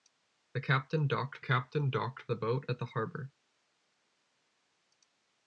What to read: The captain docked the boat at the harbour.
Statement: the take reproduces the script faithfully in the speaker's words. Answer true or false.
false